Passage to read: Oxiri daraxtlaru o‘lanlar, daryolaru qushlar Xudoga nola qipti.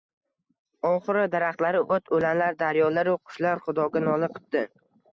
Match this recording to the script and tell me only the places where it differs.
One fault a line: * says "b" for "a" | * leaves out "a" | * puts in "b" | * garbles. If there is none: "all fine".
* puts in "o‘t"